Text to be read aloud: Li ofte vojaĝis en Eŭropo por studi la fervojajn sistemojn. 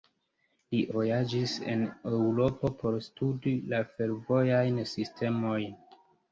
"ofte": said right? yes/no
no